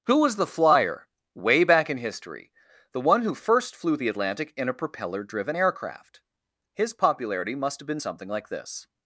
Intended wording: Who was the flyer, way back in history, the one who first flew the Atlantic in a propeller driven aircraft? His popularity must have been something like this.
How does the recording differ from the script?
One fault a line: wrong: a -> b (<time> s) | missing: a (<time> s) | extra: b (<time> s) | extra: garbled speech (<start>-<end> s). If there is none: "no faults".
no faults